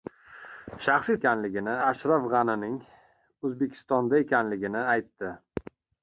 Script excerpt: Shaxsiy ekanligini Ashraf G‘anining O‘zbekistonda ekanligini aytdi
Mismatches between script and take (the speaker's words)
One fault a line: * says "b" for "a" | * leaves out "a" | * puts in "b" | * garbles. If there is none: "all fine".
all fine